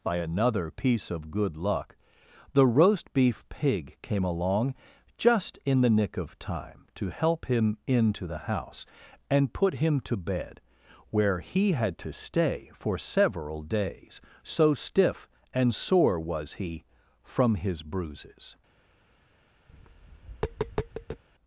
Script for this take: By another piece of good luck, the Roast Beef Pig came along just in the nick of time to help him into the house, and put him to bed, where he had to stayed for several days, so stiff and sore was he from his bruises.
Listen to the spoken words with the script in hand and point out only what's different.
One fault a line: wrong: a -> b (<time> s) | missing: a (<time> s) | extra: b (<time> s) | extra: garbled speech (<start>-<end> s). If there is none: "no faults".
wrong: stayed -> stay (12.1 s)